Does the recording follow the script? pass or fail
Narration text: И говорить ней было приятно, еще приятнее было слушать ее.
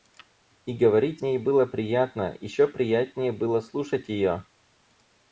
pass